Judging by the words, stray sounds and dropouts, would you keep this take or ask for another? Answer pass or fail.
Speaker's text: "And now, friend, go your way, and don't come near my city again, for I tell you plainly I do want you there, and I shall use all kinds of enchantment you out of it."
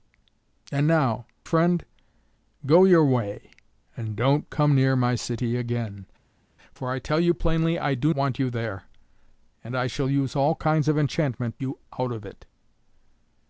pass